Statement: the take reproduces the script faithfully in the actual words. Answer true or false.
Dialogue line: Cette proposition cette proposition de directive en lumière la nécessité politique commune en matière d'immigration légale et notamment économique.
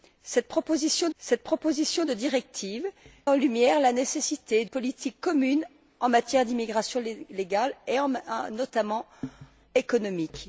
true